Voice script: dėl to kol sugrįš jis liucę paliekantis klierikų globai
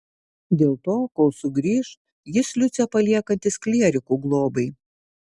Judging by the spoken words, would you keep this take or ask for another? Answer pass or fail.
pass